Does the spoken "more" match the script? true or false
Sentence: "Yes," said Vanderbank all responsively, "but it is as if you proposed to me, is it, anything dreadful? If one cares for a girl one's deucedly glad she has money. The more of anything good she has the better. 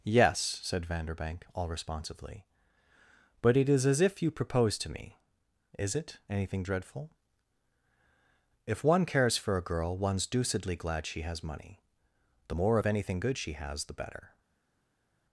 true